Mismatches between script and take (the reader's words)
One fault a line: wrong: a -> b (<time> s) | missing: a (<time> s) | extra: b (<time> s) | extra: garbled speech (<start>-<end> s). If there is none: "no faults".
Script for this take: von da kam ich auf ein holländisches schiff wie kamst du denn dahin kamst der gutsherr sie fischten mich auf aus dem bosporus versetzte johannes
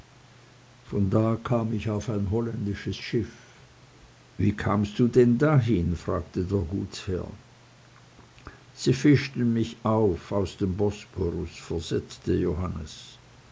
wrong: kamst -> fragte (6.0 s)